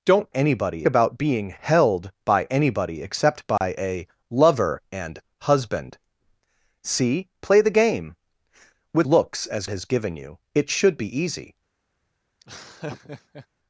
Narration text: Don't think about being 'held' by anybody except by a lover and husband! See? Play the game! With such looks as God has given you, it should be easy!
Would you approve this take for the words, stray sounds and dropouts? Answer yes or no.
no